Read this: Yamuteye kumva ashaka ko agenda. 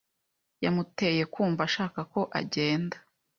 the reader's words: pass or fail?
pass